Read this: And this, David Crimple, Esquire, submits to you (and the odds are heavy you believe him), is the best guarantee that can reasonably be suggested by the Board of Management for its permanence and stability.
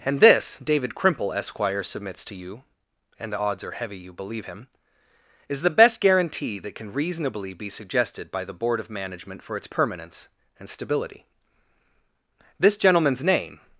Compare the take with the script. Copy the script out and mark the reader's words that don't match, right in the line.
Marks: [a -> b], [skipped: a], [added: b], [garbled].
And this, David Crimple, Esquire, submits to you (and the odds are heavy you believe him), is the best guarantee that can reasonably be suggested by the Board of Management for its permanence and stability. [added: This gentleman's name]